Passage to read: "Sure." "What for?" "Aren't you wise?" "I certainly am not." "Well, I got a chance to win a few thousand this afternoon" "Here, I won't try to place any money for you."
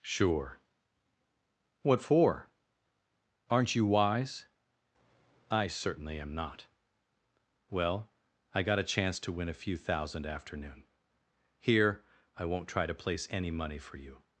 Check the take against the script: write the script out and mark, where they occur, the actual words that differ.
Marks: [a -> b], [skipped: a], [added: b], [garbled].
"Sure." "What for?" "Aren't you wise?" "I certainly am not." "Well, I got a chance to win a few thousand [skipped: this] afternoon" "Here, I won't try to place any money for you."